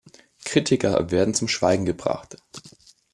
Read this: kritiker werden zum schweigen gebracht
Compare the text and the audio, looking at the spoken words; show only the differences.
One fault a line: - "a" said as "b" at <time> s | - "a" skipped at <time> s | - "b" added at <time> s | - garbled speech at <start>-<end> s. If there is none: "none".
none